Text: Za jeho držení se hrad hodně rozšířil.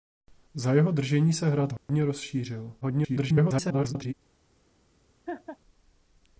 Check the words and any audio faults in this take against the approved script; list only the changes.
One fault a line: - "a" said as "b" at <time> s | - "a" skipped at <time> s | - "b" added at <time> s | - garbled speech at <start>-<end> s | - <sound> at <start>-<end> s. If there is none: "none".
- dropout at 1.8-1.9 s
- garbled speech at 2.8-4.1 s
- laugh at 5.3-5.6 s